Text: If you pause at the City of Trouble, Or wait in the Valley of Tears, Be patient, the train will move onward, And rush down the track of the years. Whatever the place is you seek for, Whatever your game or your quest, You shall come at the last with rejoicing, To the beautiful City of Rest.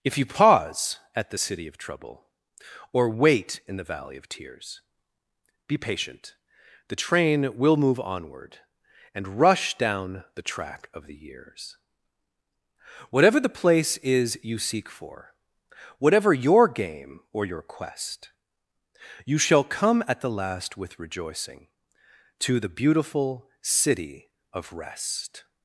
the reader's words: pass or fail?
pass